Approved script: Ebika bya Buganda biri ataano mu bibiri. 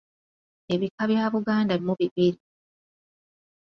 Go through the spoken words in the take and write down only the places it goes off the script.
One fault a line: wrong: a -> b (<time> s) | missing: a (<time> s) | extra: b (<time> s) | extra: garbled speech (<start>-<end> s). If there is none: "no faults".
missing: biri ataano (1.7 s)